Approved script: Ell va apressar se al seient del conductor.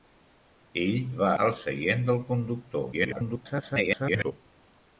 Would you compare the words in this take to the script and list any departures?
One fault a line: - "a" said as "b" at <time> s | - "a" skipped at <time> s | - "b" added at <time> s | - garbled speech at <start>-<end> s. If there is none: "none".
- "apressar se" skipped at 1.3 s
- garbled speech at 2.9-4.3 s